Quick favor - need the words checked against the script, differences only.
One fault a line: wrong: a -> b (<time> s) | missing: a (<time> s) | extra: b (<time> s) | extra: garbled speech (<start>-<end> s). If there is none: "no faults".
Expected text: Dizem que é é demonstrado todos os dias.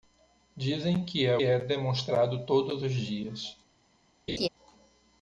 no faults